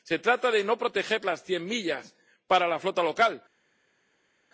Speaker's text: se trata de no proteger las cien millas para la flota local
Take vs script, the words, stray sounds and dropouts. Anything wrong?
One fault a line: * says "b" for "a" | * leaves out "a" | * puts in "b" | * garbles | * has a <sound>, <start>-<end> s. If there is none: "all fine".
all fine